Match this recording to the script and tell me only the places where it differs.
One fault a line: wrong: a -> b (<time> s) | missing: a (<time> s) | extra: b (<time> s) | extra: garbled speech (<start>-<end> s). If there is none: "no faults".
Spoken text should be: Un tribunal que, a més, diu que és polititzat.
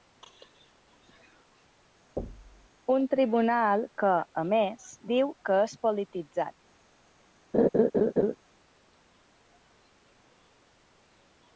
no faults